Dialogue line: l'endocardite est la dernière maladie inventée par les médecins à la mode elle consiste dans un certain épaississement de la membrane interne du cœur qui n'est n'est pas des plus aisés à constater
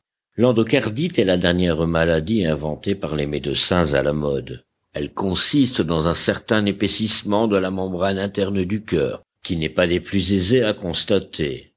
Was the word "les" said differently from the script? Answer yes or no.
no